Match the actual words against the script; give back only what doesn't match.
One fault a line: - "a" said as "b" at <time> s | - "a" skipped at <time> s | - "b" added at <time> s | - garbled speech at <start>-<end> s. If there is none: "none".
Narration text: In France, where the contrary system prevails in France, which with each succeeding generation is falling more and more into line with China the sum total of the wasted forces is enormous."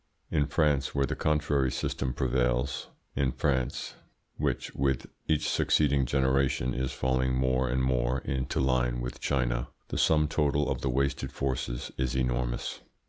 none